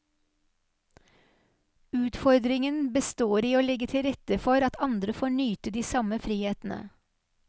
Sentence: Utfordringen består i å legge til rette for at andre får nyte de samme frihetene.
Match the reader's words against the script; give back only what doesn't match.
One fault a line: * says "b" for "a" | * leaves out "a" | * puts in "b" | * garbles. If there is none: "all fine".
all fine